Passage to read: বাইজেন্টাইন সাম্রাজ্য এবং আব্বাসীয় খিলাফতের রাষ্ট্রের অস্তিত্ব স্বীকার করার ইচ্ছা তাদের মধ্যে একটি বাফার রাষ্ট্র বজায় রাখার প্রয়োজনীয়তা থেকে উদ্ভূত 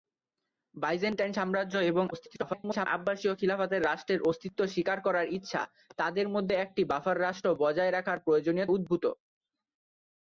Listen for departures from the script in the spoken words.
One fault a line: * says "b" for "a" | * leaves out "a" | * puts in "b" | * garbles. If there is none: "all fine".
* garbles
* leaves out "থেকে"